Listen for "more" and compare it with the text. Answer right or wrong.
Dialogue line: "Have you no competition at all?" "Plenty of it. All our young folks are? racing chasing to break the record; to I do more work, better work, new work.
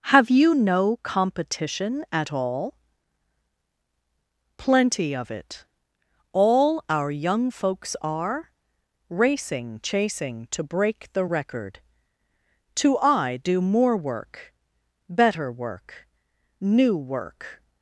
right